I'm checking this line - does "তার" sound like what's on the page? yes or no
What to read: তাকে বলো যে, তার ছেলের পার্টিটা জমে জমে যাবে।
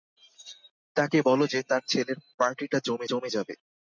yes